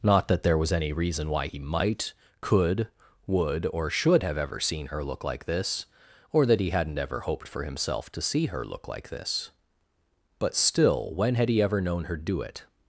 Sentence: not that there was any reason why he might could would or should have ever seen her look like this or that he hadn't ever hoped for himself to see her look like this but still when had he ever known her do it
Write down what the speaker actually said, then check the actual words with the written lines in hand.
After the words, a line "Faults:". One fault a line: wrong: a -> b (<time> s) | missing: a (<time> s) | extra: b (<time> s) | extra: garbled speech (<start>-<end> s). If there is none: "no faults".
not that there was any reason why he might could would or should have ever seen her look like this or that he hadn't ever hoped for himself to see her look like this but still when had he ever known her do it
Faults:
no faults